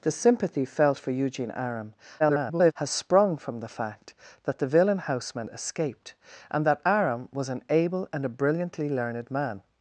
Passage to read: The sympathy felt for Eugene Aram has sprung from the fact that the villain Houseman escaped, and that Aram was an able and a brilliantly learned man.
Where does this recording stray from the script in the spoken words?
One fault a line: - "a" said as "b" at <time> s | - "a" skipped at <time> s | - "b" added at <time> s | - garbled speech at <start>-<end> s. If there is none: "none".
- garbled speech at 2.2-2.7 s